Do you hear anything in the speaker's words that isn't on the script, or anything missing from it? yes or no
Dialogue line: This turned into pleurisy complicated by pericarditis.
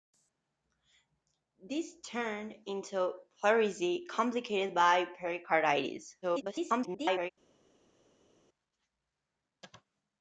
yes